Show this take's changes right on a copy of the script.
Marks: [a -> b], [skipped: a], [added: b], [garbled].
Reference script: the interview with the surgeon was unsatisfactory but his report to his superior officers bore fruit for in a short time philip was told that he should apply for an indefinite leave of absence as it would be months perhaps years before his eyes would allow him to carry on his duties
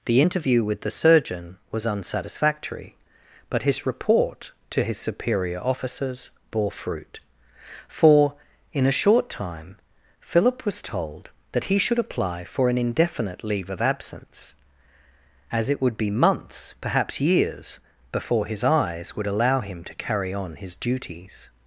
the interview with the surgeon was unsatisfactory but his report to his superior officers bore fruit for in a short time philip was told that he should apply for an indefinite leave of absence as it would be months perhaps years before his eyes would allow him to carry on his duties